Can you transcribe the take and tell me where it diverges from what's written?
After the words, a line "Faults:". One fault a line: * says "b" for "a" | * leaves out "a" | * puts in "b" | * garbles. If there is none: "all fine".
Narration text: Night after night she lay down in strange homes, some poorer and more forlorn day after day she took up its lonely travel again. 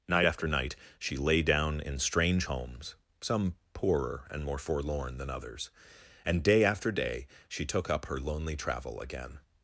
Night after night she lay down in strange homes, some poorer and more forlorn than others; and day after day she took up her lonely travel again.
Faults:
* puts in "than others and"
* says "her" for "its"